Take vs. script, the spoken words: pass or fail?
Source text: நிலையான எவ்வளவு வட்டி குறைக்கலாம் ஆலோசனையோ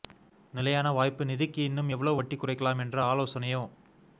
fail